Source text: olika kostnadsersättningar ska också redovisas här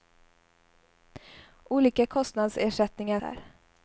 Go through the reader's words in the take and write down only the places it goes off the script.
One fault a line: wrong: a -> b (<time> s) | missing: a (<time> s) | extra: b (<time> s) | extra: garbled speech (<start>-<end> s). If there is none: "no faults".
missing: ska också redovisas (3.2 s)